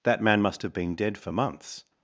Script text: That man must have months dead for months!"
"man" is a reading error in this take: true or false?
false